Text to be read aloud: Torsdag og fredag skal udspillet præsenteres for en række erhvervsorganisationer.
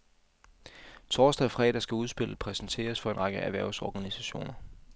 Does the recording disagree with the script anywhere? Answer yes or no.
no